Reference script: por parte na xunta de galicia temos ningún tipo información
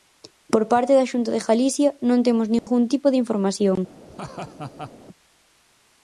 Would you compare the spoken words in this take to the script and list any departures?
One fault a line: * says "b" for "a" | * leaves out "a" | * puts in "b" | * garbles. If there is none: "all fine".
* says "da" for "na"
* puts in "non"
* puts in "de"